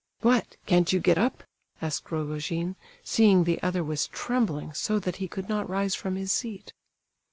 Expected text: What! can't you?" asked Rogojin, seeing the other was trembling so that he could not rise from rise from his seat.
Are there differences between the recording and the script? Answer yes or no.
yes